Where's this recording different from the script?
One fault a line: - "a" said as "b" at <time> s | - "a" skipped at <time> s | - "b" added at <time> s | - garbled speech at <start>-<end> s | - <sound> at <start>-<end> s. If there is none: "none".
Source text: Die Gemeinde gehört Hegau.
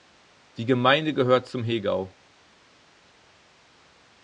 - "zum" added at 1.5 s